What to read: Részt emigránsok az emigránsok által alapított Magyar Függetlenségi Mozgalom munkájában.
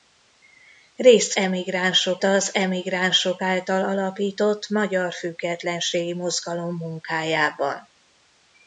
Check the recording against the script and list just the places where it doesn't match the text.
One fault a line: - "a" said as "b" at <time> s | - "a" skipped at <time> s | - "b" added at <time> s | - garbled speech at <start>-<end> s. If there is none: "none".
none